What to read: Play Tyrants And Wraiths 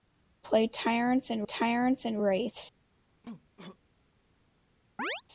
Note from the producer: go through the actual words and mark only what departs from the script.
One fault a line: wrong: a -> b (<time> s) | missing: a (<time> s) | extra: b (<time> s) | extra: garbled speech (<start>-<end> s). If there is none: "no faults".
extra: Tyrants And (1.4 s)